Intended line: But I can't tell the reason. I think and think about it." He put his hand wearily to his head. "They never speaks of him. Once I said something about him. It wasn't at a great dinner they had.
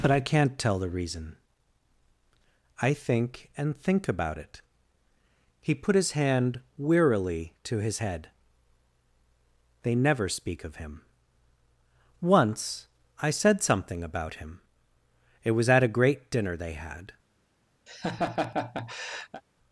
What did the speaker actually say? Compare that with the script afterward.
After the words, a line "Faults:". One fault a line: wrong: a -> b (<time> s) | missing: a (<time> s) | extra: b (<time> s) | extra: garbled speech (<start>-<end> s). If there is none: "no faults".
But I can't tell the reason. I think and think about it." He put his hand wearily to his head. "They never speak of him. Once I said something about him. It was at a great dinner they had.
Faults:
wrong: speaks -> speak (10.3 s)
wrong: wasn't -> was (15.5 s)